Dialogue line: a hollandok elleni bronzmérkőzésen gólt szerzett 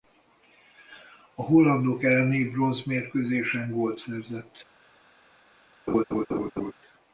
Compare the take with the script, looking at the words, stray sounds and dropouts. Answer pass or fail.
fail